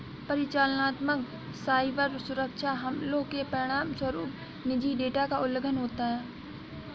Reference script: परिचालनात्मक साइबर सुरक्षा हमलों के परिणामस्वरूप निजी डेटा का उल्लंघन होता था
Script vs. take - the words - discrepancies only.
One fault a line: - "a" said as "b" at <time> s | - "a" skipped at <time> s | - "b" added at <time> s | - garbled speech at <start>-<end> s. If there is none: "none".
- "था" said as "है" at 6.1 s